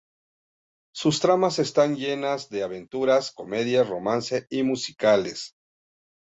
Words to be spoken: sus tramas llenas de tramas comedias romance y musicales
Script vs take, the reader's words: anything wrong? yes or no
yes